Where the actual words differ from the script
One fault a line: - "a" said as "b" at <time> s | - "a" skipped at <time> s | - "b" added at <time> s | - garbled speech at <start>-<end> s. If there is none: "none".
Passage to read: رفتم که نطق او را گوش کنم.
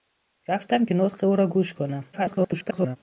- garbled speech at 2.1-3.0 s